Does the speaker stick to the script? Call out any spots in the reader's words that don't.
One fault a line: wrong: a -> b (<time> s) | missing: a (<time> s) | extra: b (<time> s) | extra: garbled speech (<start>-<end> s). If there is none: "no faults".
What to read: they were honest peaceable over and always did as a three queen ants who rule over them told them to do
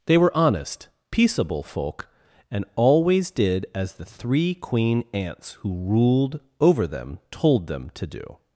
wrong: over -> folk (1.6 s)
wrong: a -> the (3.9 s)
wrong: rule -> ruled (5.8 s)